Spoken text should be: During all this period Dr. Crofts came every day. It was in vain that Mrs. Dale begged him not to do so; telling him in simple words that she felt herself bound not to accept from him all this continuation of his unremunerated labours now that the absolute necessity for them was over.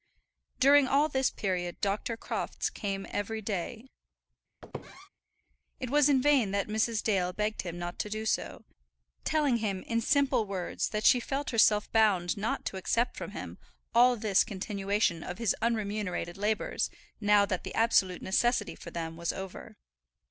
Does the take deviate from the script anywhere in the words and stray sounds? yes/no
yes